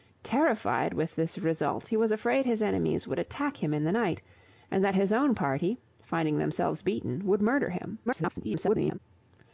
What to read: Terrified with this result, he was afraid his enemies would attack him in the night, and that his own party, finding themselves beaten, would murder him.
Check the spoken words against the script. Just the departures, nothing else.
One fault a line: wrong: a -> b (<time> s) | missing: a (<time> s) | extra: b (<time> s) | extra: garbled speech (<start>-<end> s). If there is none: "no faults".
extra: garbled speech (8.1-9.0 s)